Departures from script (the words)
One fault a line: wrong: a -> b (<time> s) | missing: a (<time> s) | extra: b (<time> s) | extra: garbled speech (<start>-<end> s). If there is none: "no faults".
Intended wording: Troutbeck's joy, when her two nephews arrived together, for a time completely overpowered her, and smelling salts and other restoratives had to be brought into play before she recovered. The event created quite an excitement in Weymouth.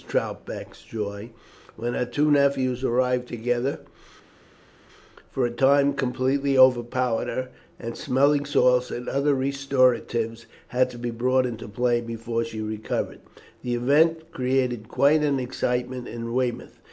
no faults